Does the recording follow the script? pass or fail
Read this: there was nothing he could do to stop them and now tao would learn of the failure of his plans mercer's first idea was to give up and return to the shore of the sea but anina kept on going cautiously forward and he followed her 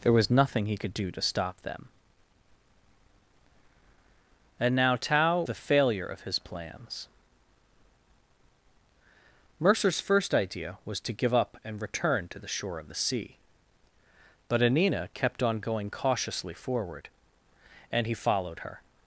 fail